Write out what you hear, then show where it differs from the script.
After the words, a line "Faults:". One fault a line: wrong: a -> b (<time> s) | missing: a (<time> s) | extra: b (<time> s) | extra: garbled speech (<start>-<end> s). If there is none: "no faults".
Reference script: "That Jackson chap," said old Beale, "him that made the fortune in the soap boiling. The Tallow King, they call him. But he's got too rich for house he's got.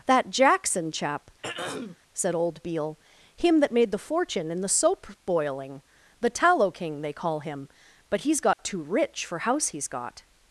"That Jackson chap," said old Beale, "him that made the fortune in the soap boiling. The Tallow King, they call him. But he's got too rich for house he's got.
Faults:
no faults